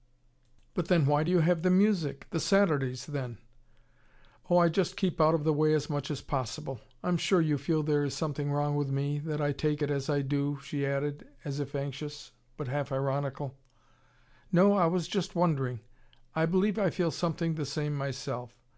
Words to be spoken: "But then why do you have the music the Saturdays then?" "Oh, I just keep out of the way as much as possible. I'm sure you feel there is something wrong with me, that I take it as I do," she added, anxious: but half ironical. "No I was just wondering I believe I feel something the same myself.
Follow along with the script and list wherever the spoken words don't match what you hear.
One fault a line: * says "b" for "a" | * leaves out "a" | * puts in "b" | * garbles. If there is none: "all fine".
* puts in "as if"